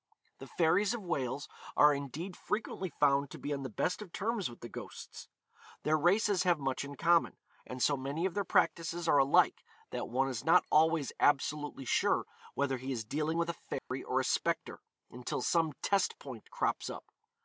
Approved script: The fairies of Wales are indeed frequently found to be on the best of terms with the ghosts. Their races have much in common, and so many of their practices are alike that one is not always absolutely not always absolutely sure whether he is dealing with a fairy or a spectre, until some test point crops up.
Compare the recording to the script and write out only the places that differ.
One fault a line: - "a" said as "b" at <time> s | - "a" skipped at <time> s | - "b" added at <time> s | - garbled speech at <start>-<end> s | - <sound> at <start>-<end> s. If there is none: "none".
- "not always absolutely" skipped at 11.8 s
- dropout at 13.8-13.9 s